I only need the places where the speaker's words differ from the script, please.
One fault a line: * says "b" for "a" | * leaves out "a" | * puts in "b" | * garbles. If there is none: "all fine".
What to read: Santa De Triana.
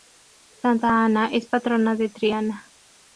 * puts in "Ana es patrona"